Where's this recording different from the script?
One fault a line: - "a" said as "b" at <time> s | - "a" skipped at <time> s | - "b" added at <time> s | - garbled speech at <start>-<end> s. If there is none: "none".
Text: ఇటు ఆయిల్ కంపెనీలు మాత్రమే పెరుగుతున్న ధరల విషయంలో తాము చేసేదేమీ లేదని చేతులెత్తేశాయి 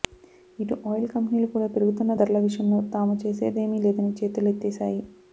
- "మాత్రమే" said as "కూడా" at 1.5 s